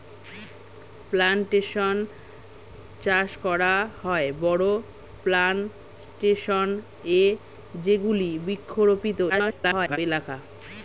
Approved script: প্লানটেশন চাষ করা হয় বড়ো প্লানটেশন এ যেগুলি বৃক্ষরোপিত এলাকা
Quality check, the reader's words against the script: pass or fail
fail